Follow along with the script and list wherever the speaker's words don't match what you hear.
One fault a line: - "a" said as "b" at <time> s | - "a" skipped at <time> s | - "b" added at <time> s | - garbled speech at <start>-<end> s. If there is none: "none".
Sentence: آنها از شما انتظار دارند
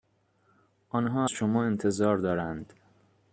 - "از" skipped at 1.3 s